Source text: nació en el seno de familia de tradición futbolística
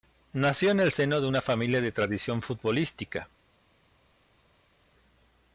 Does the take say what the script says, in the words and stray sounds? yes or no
no